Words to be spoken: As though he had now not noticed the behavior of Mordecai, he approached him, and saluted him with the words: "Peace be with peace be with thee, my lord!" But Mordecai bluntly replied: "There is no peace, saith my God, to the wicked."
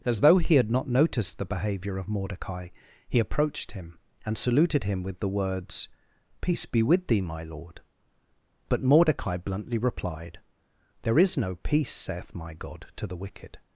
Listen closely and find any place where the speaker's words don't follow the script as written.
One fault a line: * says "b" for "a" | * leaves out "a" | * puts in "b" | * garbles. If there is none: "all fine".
* leaves out "now"
* leaves out "peace be with"